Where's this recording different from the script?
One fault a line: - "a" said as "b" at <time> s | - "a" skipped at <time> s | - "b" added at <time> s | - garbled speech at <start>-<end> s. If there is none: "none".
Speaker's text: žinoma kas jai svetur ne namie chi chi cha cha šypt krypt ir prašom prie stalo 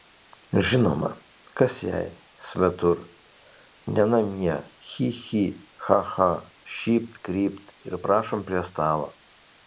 none